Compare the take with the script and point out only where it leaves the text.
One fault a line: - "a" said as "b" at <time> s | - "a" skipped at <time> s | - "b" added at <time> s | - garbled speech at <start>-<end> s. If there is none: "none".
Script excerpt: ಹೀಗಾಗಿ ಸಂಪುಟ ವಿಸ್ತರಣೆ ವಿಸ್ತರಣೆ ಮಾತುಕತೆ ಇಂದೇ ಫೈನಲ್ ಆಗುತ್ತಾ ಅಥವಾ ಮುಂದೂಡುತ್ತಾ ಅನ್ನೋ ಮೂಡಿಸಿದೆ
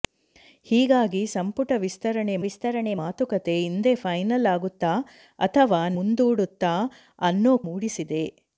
none